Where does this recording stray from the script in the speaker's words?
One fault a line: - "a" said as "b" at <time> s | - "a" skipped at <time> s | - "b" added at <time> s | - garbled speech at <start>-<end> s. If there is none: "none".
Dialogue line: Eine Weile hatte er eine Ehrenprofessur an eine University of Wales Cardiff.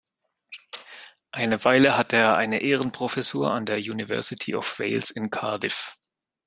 - "eine" said as "der" at 3.6 s
- "in" added at 5.1 s